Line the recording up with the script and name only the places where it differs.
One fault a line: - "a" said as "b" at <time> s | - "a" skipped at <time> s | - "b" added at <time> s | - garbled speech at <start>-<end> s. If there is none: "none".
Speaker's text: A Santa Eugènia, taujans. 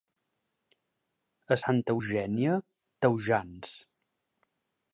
none